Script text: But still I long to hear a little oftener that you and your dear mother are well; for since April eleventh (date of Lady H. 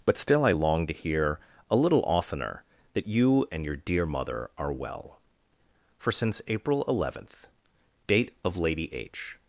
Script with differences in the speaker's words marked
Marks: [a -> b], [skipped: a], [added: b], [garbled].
But still I long to hear a little oftener that you and your dear mother are well; for since April eleventh (date of Lady H.